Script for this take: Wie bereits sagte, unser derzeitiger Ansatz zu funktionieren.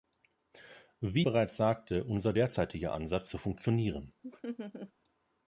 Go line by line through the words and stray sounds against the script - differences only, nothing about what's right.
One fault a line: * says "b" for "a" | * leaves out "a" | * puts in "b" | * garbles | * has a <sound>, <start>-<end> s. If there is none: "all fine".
* has a laugh, 4.2-4.9 s